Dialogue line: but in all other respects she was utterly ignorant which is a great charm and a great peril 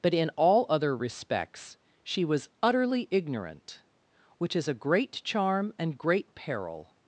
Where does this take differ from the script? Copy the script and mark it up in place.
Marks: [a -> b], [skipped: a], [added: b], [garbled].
but in all other respects she was utterly ignorant which is a great charm and [skipped: a] great peril